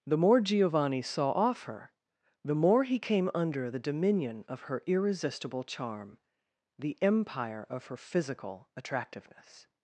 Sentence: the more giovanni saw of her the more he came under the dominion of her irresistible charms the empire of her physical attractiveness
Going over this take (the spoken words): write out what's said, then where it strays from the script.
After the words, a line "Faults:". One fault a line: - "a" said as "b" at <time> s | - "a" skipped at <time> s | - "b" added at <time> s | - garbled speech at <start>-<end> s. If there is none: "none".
the more giovanni saw off her the more he came under the dominion of her irresistible charm the empire of her physical attractiveness
Faults:
- "of" said as "off" at 1.3 s
- "charms" said as "charm" at 5.6 s